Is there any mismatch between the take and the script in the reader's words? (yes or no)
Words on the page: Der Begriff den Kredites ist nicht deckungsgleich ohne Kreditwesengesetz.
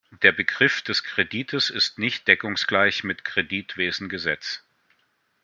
yes